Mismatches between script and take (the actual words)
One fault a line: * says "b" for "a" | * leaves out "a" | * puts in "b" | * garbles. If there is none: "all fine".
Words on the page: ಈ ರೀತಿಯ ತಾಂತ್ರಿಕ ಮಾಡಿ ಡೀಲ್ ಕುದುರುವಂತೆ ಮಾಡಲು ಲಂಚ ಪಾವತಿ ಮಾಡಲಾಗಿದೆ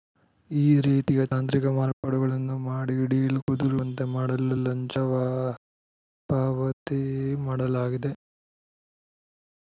* puts in "ಮಾರ್ಪಾಡುಗಳನ್ನು"